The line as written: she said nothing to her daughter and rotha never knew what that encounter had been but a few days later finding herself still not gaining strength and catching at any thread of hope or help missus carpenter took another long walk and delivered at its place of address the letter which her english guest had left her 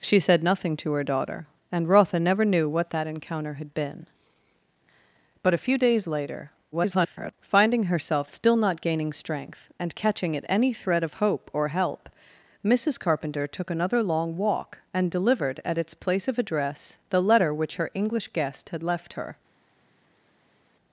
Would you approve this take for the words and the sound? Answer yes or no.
no